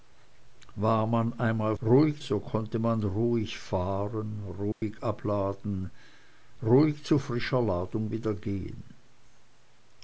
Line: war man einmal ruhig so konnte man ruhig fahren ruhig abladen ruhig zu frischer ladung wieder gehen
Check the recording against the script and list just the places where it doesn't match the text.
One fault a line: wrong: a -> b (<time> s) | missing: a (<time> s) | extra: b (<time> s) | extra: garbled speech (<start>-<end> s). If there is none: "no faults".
no faults